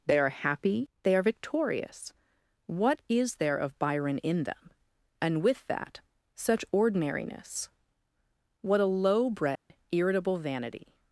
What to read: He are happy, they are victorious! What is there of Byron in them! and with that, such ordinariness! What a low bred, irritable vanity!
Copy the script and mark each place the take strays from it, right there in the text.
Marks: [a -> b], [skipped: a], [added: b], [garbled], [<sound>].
[He -> They] are happy, they are victorious! What is there of Byron in them! and with that, such ordinariness! What a low bred, [dropout] irritable vanity!